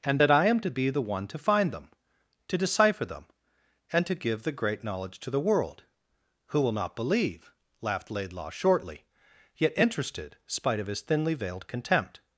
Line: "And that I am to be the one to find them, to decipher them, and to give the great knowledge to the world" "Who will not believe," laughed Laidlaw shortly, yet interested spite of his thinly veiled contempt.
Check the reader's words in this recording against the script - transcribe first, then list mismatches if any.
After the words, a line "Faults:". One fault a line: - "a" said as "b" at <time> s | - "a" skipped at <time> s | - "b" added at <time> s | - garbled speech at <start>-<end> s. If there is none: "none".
"And that I am to be the one to find them, to decipher them, and to give the great knowledge to the world" "Who will not believe," laughed Laidlaw shortly, yet interested spite of his thinly veiled contempt.
Faults:
none